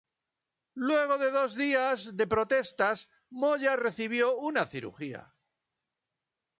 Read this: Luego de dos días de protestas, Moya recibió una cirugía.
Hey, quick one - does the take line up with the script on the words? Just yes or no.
yes